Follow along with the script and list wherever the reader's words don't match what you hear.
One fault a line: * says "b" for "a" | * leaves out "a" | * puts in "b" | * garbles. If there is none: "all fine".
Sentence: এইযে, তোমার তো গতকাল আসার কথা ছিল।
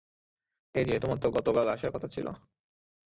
all fine